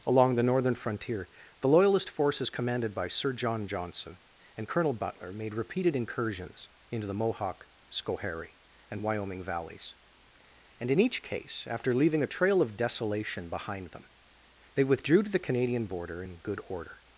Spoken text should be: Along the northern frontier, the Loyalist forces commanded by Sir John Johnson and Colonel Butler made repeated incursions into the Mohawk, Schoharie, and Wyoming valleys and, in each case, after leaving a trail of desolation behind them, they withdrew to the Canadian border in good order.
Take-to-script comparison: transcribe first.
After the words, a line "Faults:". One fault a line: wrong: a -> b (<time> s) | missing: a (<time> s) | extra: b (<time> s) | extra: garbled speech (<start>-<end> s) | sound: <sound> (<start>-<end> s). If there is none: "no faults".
Along the northern frontier, the Loyalist forces commanded by Sir John Johnson and Colonel Butler made repeated incursions into the Mohawk, Schoharie, and Wyoming valleys and, in each case, after leaving a trail of desolation behind them, they withdrew to the Canadian border in good order.
Faults:
no faults